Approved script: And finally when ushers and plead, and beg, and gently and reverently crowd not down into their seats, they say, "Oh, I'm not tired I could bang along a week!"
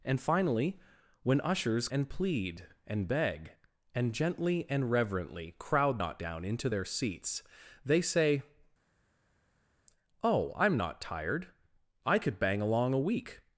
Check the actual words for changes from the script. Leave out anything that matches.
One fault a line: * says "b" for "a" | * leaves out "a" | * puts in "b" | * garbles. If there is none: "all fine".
all fine